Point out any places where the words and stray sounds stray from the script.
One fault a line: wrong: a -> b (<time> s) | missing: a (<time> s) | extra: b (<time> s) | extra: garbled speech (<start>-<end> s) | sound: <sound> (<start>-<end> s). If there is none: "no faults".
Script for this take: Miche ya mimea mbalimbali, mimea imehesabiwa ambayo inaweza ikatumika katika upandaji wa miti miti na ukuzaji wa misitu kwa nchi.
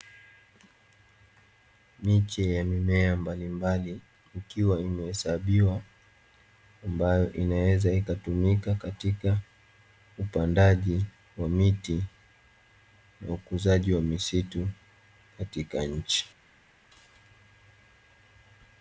wrong: mimea -> ikiwa (4.4 s)
missing: miti (12.0 s)
wrong: kwa -> katika (15.4 s)